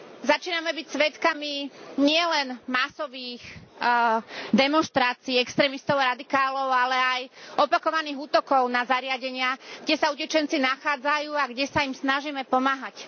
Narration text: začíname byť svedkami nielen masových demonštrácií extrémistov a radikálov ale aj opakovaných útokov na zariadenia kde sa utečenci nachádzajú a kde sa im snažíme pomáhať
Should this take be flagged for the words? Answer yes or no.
no